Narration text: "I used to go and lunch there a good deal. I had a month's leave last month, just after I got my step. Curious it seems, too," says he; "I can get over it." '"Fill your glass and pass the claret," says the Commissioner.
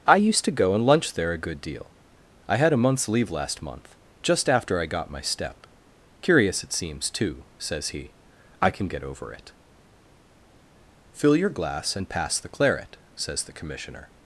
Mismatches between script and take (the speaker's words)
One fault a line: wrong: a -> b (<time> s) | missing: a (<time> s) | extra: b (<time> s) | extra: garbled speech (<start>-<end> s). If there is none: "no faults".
no faults